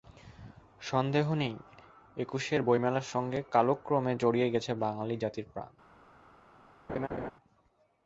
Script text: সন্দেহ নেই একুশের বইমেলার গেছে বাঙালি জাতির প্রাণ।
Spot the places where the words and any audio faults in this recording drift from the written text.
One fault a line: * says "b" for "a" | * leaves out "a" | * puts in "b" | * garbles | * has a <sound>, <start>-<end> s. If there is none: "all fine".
* puts in "সঙ্গে কালক্রমে জড়িয়ে"
* has a laugh, 6.9-7.3 s